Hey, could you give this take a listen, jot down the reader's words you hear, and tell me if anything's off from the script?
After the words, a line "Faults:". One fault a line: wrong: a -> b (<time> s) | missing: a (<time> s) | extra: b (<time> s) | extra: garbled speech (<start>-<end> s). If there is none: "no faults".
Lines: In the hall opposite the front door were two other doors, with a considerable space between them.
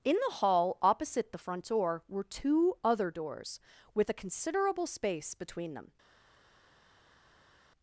In the hall opposite the front door were two other doors, with a considerable space between them.
Faults:
no faults